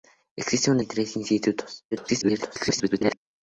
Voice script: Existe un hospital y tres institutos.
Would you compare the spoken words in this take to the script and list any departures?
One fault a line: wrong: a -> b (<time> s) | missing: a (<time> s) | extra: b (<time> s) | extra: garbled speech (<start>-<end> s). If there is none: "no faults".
missing: hospital (0.8 s)
extra: garbled speech (1.9-3.2 s)